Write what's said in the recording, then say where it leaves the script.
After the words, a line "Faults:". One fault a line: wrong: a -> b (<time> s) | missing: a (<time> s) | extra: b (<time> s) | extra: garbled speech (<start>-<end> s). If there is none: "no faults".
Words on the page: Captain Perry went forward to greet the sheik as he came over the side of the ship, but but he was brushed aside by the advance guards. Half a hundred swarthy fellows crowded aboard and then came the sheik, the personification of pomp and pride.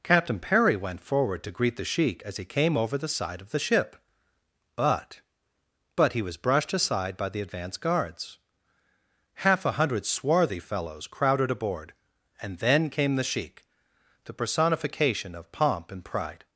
Captain Perry went forward to greet the sheik as he came over the side of the ship, but but he was brushed aside by the advance guards. Half a hundred swarthy fellows crowded aboard and then came the sheik, the personification of pomp and pride.
Faults:
no faults